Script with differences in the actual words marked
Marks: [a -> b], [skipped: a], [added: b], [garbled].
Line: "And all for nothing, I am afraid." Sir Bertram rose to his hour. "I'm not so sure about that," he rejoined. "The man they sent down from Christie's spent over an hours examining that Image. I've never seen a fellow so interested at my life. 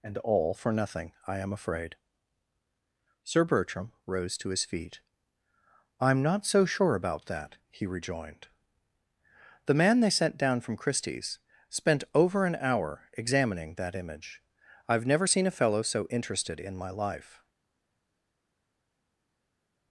"And all for nothing, I am afraid." Sir Bertram rose to his [hour. -> feet] "I'm not so sure about that," he rejoined. "The man they sent down from Christie's spent over an [hours -> hour] examining that Image. I've never seen a fellow so interested [at -> in] my life.